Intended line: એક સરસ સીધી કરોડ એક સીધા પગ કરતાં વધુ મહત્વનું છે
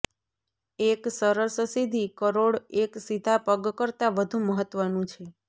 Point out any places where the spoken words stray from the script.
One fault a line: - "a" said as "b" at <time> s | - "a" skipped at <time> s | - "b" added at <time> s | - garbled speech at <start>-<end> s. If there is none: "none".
none